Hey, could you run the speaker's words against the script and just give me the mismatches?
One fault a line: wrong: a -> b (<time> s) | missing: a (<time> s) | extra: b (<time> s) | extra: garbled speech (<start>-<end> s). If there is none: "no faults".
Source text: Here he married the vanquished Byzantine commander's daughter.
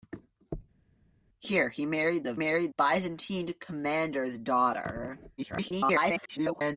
wrong: vanquished -> married (2.3 s)
extra: garbled speech (5.4-6.8 s)